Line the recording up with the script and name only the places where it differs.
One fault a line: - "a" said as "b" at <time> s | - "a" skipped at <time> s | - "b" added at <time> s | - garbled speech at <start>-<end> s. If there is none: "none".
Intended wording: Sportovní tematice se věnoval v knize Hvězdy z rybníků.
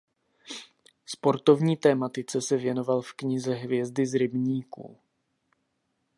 none